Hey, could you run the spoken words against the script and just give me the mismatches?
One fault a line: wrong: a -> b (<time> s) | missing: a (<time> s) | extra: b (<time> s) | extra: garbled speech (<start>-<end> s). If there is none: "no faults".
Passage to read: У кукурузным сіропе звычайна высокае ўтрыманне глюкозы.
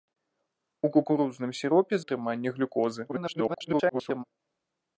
missing: звычайна высокае (1.9 s)
extra: garbled speech (3.1-4.2 s)